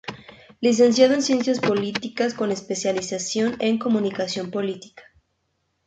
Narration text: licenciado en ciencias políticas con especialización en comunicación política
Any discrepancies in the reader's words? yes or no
no